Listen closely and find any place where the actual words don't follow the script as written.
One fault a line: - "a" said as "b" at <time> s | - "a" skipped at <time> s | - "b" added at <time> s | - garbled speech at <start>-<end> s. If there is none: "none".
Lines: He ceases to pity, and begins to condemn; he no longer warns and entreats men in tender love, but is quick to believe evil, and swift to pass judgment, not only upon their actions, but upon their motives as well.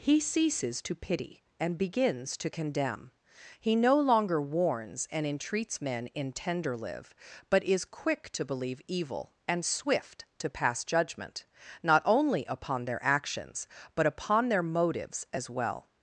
- "love" said as "live" at 6.8 s